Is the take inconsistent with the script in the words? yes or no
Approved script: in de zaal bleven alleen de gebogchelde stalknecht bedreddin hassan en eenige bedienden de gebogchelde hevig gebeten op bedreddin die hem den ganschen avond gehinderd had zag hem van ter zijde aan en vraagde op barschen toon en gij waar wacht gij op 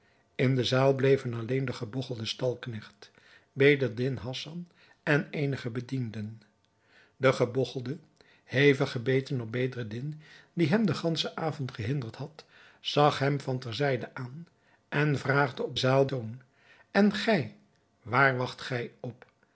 yes